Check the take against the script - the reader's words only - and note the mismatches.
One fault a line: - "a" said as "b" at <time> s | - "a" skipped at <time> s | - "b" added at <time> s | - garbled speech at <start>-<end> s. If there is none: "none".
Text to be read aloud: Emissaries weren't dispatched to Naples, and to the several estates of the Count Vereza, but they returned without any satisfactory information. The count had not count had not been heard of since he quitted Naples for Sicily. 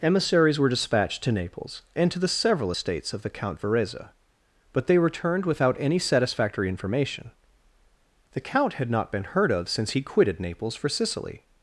- "weren't" said as "were" at 0.6 s
- "count had not" skipped at 9.1 s